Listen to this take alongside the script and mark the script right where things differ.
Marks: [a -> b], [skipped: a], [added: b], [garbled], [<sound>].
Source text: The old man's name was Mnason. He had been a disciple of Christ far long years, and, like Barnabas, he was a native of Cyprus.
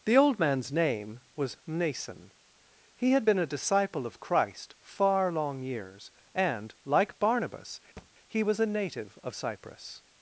The old man's name was Mnason. He had been a disciple of Christ far long years, and, like Barnabas, [thud] he was a native of Cyprus.